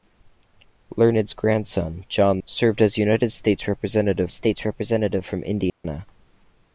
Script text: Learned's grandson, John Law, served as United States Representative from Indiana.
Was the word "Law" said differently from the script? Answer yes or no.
yes